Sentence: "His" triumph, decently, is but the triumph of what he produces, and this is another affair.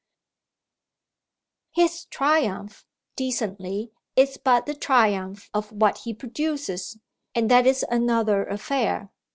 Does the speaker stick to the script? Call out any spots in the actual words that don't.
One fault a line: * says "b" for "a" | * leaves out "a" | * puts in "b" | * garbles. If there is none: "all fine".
* says "that" for "this"